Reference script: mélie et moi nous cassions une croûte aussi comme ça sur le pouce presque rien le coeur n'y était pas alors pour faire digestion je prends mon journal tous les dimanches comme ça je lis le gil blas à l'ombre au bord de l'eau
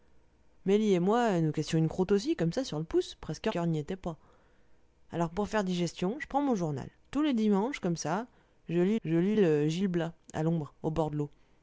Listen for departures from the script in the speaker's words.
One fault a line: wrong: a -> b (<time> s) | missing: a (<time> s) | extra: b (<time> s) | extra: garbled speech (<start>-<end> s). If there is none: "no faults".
missing: rien le (3.5 s)
extra: je lis (9.0 s)